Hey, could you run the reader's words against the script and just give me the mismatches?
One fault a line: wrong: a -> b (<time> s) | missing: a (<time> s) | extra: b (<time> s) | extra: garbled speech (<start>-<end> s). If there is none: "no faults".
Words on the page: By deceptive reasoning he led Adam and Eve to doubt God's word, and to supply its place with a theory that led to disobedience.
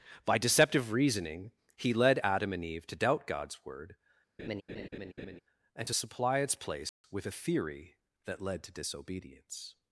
no faults